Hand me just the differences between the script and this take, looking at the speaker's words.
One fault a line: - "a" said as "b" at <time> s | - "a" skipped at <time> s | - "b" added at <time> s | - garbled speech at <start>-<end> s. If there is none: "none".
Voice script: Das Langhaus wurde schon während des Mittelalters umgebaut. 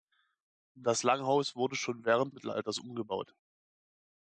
- "des" skipped at 2.3 s